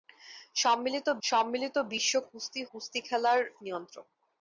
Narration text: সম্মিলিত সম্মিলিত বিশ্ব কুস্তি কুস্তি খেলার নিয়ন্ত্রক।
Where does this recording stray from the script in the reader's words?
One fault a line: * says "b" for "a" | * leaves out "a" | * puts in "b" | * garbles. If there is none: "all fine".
all fine